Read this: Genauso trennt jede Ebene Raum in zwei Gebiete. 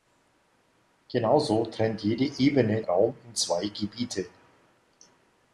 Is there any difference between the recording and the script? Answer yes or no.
no